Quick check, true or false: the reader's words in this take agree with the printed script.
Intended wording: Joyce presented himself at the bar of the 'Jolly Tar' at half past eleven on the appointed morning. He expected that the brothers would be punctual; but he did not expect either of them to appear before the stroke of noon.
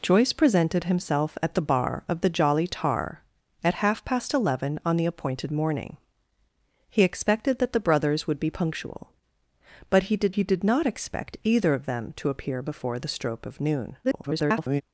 false